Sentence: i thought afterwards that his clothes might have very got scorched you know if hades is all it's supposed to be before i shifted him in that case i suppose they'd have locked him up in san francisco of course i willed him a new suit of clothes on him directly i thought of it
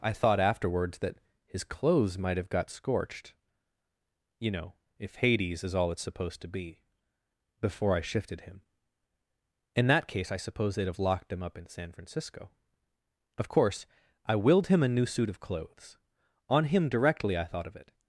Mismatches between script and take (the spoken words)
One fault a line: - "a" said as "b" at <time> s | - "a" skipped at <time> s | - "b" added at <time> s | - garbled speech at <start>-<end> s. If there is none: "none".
- "very" skipped at 2.5 s